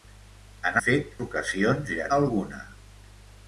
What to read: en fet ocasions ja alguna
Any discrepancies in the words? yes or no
no